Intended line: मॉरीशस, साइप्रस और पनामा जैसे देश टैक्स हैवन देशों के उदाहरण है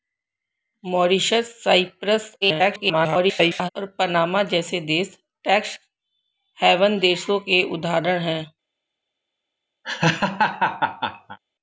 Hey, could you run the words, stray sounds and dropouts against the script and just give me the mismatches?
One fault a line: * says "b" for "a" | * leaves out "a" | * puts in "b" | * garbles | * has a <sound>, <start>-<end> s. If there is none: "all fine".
* garbles
* has a laugh, 9.8-11.4 s